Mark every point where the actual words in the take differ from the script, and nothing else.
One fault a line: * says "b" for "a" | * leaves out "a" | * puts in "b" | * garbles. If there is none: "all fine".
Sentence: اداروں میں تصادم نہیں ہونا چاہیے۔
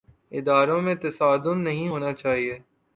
all fine